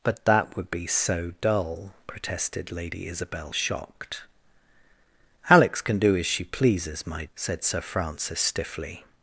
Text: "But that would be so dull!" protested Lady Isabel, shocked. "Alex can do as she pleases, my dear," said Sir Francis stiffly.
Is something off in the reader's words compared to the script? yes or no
yes